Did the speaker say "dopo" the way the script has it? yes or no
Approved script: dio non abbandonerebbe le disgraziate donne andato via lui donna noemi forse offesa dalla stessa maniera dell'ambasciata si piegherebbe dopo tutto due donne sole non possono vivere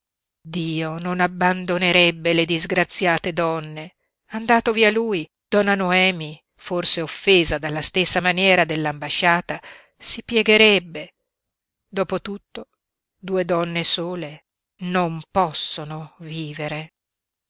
yes